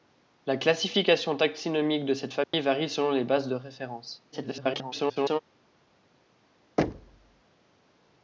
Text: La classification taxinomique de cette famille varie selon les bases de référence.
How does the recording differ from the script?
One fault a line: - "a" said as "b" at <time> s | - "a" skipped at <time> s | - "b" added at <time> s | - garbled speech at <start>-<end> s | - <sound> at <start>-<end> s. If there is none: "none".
- dropout at 2.4-2.5 s
- garbled speech at 4.3-5.4 s
- thud at 6.8-7.4 s